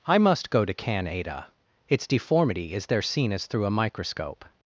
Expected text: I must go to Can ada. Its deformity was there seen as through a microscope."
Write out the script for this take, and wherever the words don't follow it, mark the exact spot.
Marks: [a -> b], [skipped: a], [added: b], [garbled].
I must go to Can ada. Its deformity [was -> is] there seen as through a microscope."